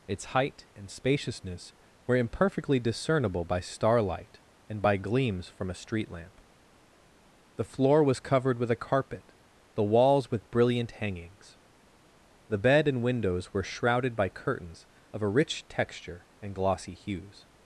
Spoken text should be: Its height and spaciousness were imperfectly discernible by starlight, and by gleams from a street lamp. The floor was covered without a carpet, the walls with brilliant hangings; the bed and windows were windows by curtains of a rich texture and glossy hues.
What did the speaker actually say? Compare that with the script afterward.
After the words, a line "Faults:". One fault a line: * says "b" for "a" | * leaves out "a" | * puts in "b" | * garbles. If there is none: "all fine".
Its height and spaciousness were imperfectly discernible by starlight, and by gleams from a street lamp. The floor was covered with a carpet, the walls with brilliant hangings; the bed and windows were shrouded by curtains of a rich texture and glossy hues.
Faults:
* says "with" for "without"
* says "shrouded" for "windows"